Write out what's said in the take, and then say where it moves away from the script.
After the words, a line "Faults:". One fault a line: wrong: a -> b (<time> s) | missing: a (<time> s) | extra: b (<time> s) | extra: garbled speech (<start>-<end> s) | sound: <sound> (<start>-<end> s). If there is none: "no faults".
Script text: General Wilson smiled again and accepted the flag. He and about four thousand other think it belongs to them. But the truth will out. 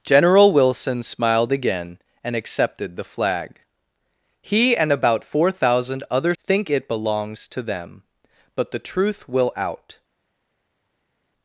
General Wilson smiled again and accepted the flag. He and about four thousand other think it belongs to them. But the truth will out.
Faults:
no faults